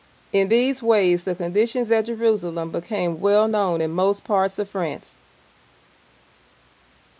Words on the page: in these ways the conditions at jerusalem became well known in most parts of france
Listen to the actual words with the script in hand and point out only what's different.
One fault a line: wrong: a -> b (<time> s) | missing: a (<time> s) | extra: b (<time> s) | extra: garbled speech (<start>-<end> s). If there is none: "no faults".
no faults